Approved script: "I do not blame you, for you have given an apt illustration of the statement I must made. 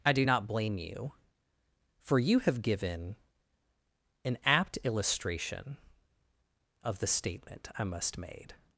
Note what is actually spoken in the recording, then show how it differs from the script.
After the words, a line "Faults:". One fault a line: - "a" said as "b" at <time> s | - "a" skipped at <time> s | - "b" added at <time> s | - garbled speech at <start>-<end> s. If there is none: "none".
"I do not blame you, for you have given an apt illustration of the statement I must made.
Faults:
none